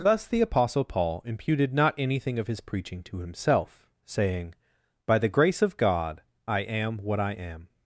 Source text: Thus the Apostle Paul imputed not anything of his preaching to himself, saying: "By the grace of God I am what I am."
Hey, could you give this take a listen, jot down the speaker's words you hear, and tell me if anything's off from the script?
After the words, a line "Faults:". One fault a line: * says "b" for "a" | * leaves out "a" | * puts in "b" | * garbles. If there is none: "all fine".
Thus the Apostle Paul imputed not anything of his preaching to himself, saying: "By the grace of God I am what I am."
Faults:
all fine